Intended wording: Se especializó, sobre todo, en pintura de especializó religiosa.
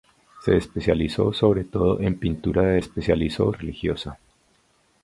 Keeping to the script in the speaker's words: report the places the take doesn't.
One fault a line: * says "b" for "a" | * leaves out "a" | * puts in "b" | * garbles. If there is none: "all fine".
all fine